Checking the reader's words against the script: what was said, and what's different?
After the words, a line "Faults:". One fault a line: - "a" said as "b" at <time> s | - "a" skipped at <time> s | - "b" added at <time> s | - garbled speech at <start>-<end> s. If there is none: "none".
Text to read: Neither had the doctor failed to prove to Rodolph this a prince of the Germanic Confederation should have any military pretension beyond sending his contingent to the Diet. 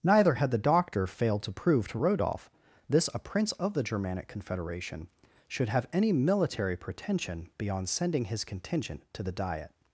Neither had the doctor failed to prove to Rodolph this a prince of the Germanic Confederation should have any military pretension beyond sending his contingent to the Diet.
Faults:
none